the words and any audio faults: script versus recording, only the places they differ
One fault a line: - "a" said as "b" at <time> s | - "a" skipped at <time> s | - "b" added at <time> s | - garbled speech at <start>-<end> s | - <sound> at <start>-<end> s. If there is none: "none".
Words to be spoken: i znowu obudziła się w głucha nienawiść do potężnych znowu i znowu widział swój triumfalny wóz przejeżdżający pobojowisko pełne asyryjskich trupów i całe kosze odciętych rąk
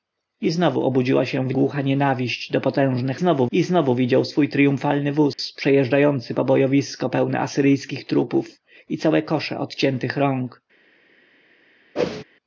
- dropout at 5.3-5.4 s
- whoosh at 12.0-12.2 s